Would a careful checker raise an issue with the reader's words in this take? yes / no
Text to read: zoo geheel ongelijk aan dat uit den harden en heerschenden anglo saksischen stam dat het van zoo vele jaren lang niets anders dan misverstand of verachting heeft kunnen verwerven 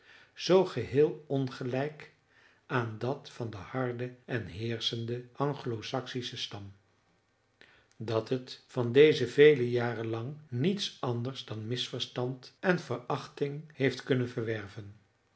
yes